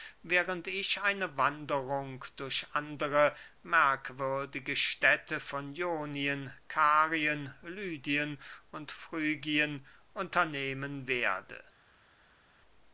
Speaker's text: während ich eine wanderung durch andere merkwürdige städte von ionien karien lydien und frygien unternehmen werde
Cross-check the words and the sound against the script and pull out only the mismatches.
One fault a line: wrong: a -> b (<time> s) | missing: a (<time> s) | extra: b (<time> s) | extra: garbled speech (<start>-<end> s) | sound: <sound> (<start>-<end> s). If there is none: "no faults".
no faults